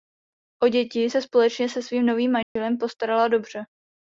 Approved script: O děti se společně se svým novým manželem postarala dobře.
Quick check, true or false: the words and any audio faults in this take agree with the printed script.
false